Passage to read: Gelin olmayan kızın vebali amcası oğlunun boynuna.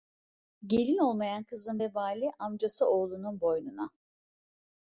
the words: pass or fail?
pass